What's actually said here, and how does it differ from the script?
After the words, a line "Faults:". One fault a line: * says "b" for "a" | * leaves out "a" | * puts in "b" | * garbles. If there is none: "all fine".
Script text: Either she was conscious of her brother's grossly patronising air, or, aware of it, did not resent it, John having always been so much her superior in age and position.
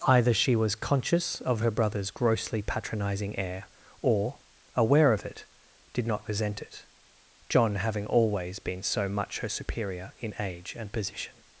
Either she was conscious of her brother's grossly patronising air, or, aware of it, did not resent it, John having always been so much her superior in age and position.
Faults:
all fine